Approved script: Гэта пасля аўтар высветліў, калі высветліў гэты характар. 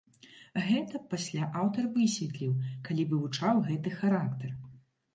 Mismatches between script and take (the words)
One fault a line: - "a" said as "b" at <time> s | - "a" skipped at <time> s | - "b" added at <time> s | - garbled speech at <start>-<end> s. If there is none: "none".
- "высветліў" said as "вывучаў" at 3.1 s